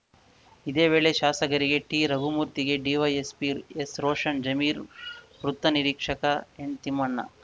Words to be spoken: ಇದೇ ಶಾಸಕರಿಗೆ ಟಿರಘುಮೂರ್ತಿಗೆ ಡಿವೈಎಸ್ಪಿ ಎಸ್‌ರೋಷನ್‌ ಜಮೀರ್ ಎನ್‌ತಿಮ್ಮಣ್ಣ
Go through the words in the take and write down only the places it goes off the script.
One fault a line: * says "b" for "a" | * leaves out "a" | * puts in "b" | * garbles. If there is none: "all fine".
* puts in "ವೇಳೆ"
* puts in "ವೃತ್ತ ನಿರೀಕ್ಷಕ"